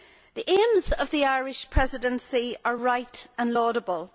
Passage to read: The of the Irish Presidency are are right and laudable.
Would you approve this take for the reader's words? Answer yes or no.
no